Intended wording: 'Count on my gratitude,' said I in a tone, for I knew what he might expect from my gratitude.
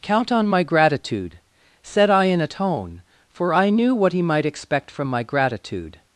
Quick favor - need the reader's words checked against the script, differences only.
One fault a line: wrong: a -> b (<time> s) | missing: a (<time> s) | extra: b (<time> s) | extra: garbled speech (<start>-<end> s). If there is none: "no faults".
no faults